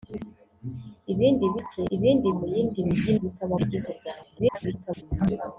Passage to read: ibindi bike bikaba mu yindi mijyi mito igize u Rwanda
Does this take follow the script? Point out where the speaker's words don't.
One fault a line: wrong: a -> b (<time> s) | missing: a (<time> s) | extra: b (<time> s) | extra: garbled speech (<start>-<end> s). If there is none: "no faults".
wrong: bikaba -> ibindi (1.9 s)
wrong: mito -> bikaba (3.2 s)
extra: garbled speech (4.4-5.0 s)